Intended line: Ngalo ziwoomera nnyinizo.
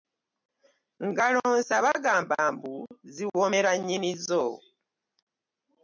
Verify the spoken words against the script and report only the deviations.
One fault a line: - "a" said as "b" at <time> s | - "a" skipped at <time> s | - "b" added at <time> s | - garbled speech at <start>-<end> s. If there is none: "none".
- "nsa bagamba mbu" added at 1.6 s